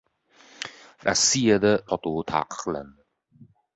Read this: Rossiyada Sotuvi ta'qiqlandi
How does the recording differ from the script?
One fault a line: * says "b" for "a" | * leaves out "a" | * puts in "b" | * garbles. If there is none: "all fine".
all fine